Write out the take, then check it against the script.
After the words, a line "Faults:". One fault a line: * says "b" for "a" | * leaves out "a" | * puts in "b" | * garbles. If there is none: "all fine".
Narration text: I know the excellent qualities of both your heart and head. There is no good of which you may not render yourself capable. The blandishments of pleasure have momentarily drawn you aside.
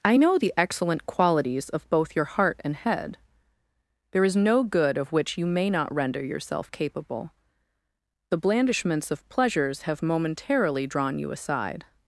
I know the excellent qualities of both your heart and head. There is no good of which you may not render yourself capable. The blandishments of pleasures have momentarily drawn you aside.
Faults:
* says "pleasures" for "pleasure"